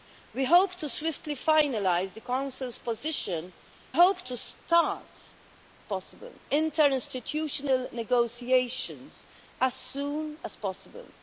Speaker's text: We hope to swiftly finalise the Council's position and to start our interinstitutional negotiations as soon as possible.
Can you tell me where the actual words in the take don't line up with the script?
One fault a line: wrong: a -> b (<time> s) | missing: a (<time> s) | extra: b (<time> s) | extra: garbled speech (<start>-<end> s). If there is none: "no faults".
wrong: and -> hope (3.9 s)
wrong: our -> possible (5.8 s)